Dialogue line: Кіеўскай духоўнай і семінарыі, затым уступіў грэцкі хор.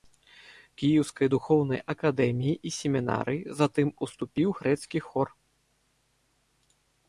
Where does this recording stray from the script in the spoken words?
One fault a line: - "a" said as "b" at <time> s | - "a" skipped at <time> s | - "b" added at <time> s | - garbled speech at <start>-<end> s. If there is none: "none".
- "акадэміі" added at 1.9 s